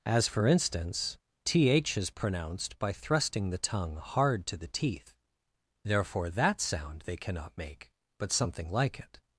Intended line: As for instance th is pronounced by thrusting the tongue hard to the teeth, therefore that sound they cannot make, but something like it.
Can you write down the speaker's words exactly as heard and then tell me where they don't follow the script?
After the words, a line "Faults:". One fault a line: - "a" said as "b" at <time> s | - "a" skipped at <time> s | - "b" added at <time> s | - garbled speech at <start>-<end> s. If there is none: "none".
As for instance th is pronounced by thrusting the tongue hard to the teeth, therefore that sound they cannot make, but something like it.
Faults:
none